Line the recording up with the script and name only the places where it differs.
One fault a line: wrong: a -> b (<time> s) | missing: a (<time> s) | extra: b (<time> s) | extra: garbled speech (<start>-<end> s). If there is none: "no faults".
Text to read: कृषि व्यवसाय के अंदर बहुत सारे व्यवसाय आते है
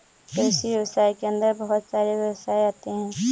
no faults